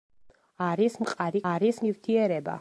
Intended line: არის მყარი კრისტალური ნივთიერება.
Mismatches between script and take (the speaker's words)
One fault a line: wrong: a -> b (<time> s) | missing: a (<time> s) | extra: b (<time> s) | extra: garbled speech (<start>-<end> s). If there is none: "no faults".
wrong: კრისტალური -> არის (1.5 s)